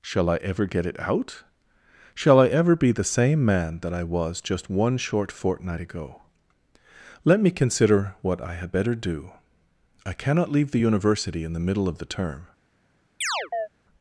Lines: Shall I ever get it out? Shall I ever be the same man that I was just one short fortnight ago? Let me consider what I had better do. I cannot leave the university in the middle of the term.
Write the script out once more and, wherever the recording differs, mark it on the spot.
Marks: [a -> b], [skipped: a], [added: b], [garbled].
Shall I ever get it out? Shall I ever be the same man that I was just one short fortnight ago? Let me consider what I had better do. I cannot leave the university in the middle of the term.